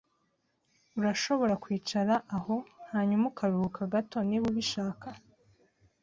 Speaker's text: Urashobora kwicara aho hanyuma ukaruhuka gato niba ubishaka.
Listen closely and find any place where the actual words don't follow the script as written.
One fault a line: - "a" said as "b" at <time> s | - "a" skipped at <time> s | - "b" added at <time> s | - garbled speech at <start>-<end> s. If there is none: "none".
none